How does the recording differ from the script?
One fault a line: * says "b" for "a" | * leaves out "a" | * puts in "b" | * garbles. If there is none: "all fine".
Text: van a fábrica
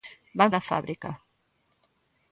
all fine